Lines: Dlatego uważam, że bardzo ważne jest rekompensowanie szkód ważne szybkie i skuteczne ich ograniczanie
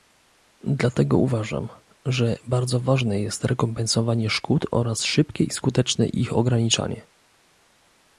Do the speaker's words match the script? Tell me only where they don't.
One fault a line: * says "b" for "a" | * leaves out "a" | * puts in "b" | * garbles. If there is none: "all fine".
* says "oraz" for "ważne"